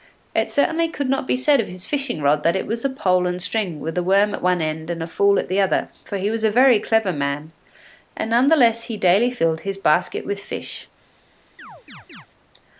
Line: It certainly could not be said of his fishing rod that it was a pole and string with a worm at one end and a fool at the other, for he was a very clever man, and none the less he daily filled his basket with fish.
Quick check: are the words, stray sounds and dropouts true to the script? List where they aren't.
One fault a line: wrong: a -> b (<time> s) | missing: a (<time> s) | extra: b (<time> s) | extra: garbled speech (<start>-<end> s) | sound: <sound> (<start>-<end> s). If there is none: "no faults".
sound: chirp (11.6-12.3 s)